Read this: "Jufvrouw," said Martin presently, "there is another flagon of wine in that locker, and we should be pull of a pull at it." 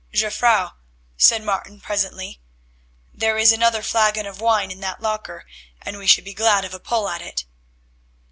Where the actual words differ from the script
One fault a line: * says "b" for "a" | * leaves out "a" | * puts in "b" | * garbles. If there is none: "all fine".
* says "glad" for "pull"